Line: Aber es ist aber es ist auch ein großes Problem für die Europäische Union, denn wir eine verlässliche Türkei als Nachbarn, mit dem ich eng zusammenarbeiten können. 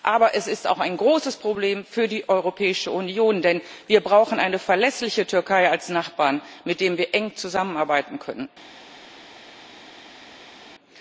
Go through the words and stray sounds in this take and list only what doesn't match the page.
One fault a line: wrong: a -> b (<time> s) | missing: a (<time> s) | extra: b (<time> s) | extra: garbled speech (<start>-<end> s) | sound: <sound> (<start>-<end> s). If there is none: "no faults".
missing: aber es ist (0.7 s)
extra: brauchen (4.0 s)
wrong: ich -> wir (7.0 s)